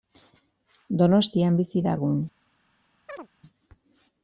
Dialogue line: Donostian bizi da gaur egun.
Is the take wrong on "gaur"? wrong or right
wrong